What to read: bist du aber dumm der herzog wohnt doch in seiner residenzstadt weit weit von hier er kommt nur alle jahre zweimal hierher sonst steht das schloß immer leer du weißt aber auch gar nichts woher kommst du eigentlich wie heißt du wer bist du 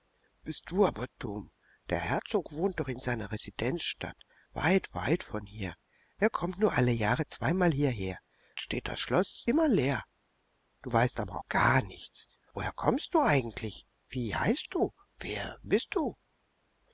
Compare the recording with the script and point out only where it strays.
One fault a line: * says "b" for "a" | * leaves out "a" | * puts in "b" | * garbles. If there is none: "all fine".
* leaves out "sonst"
* leaves out "auch"